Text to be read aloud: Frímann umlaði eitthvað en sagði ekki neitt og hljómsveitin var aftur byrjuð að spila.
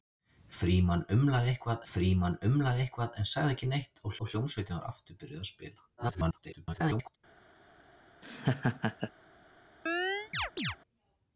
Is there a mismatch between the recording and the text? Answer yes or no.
yes